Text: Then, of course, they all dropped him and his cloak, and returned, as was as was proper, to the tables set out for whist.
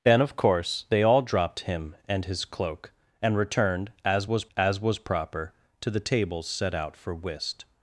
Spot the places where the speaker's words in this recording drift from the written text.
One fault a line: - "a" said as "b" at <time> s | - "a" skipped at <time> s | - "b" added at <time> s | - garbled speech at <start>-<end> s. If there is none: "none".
none